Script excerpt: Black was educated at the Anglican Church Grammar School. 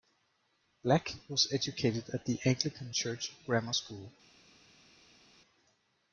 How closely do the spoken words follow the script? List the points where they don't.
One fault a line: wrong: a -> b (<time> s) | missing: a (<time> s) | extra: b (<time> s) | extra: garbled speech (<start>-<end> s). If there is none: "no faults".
no faults